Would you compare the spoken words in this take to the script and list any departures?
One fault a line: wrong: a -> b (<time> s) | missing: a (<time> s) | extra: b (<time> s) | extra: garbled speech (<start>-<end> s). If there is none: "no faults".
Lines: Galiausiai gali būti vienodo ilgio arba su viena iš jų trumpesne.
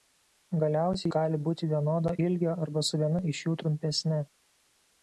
no faults